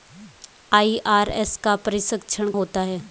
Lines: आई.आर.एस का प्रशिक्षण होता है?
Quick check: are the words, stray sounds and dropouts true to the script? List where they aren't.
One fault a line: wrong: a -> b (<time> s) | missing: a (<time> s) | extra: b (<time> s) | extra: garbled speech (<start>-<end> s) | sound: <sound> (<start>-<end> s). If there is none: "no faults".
no faults